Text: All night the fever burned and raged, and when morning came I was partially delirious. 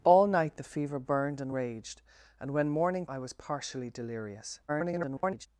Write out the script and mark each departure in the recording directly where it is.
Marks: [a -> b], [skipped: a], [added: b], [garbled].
All night the fever burned and raged, and when morning [skipped: came] I was partially delirious. [garbled]